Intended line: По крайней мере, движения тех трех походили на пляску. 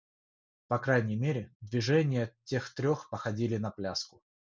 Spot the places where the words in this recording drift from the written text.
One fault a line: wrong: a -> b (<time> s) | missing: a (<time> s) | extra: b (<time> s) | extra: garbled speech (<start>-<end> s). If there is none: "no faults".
no faults